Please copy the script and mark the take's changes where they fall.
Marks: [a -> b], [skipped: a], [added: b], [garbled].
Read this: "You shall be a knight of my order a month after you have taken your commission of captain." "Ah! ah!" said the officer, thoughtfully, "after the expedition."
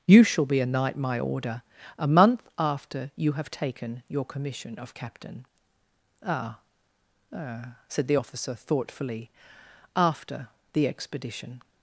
"You shall be a knight [skipped: of] my order a month after you have taken your commission of captain." "Ah! ah!" said the officer, thoughtfully, "after the expedition."